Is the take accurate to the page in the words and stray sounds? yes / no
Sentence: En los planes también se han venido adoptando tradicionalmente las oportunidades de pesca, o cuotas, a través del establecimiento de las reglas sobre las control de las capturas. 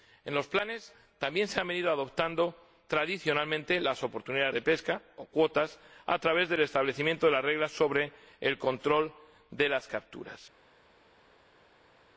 no